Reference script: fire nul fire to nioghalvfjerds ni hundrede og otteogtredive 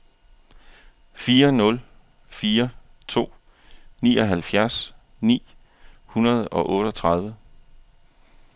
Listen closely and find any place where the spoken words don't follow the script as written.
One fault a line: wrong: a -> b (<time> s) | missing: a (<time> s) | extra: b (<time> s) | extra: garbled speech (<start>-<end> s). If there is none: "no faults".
no faults